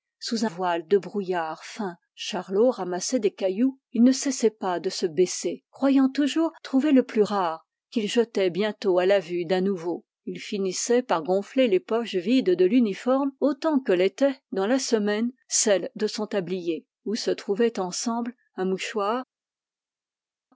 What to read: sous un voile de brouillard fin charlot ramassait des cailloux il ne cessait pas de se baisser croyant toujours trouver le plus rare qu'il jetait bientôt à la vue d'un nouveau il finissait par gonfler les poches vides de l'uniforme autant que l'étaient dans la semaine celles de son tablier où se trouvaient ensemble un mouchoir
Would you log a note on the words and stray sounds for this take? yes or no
yes